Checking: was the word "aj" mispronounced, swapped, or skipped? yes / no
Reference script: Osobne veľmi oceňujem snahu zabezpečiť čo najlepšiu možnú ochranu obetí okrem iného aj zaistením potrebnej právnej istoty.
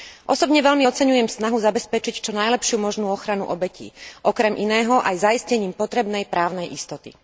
no